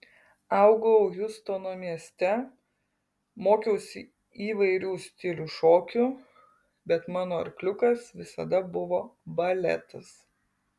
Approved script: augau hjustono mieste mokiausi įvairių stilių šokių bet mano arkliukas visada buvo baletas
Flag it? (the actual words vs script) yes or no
no